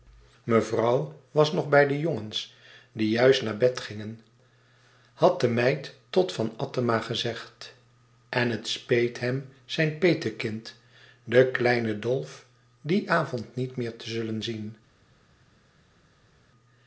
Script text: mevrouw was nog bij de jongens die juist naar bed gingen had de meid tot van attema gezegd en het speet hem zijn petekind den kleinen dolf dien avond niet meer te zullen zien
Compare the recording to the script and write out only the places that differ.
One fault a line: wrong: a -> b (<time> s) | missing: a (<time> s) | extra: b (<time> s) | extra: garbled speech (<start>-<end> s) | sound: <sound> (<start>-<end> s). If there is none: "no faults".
no faults